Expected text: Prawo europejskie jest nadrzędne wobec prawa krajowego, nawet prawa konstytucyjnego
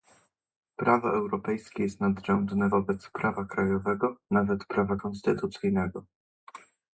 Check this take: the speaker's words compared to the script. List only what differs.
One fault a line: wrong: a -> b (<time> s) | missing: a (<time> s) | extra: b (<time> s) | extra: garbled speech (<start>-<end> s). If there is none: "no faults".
no faults